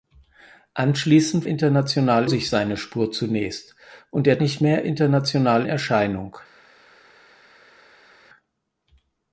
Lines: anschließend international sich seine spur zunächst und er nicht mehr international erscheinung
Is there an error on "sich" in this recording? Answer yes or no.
no